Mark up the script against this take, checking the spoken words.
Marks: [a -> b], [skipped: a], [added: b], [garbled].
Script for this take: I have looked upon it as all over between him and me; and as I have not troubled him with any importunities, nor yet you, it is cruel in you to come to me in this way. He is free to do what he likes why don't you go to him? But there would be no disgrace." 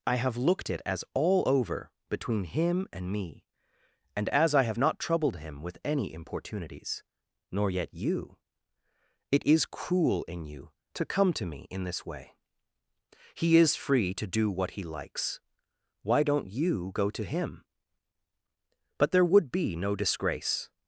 I have looked [skipped: upon] it as all over between him and me; and as I have not troubled him with any importunities, nor yet you, it is cruel in you to come to me in this way. He is free to do what he likes why don't you go to him? But there would be no disgrace."